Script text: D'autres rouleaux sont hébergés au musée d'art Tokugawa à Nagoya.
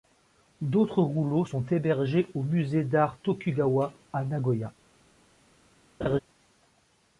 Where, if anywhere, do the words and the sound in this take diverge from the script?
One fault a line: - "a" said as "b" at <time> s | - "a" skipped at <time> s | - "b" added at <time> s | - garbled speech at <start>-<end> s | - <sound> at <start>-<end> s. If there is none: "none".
- laugh at 6.0-6.2 s